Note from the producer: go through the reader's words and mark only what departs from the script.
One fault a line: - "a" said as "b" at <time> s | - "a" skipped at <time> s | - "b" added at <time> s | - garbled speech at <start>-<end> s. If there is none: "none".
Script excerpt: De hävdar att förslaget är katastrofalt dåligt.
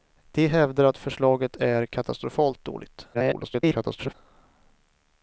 - garbled speech at 3.1-4.1 s